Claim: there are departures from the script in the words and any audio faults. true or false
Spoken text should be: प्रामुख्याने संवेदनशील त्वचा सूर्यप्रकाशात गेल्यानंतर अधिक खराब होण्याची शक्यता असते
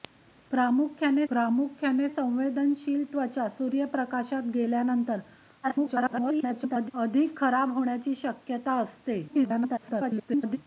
true